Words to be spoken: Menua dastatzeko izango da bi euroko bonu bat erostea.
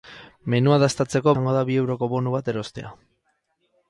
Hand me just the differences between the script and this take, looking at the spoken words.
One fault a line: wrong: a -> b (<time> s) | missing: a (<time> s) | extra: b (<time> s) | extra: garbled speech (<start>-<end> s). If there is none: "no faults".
no faults